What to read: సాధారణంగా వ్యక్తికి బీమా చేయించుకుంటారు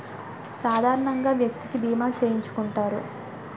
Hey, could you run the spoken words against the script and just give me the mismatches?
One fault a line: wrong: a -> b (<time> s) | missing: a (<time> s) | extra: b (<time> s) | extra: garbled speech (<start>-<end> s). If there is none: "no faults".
no faults